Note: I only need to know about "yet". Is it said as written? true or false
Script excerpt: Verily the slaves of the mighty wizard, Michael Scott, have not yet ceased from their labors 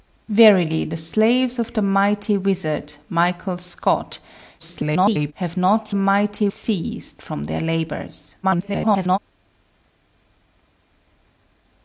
false